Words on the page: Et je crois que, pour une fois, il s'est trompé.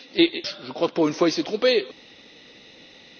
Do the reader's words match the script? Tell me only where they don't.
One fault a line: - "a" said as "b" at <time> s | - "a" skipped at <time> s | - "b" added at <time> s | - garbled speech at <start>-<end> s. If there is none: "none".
none